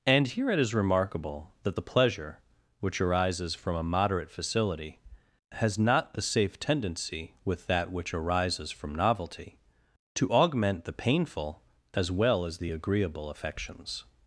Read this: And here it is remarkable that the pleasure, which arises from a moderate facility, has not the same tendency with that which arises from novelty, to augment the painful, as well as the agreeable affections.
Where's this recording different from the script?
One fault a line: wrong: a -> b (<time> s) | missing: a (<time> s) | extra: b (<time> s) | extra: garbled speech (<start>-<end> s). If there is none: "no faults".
wrong: same -> safe (6.2 s)